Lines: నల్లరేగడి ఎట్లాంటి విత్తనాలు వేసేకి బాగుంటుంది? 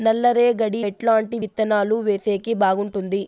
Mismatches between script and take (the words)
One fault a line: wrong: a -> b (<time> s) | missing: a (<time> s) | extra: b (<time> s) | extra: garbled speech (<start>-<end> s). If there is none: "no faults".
no faults